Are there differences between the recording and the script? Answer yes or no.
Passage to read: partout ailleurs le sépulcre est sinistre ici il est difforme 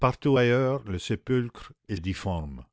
yes